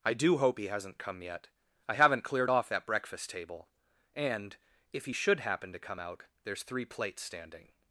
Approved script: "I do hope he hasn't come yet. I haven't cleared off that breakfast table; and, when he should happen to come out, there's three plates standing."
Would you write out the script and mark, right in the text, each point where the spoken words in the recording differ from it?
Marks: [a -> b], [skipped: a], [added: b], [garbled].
"I do hope he hasn't come yet. I haven't cleared off that breakfast table; and, [when -> if] he should happen to come out, there's three plates standing."